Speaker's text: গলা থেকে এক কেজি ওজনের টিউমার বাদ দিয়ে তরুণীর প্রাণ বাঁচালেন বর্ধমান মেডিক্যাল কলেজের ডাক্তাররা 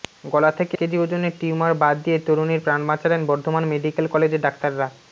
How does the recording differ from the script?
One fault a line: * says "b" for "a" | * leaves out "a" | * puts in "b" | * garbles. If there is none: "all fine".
* leaves out "এক"